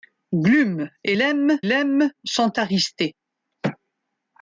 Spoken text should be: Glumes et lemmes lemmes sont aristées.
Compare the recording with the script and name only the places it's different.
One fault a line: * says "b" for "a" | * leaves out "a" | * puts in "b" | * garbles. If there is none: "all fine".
all fine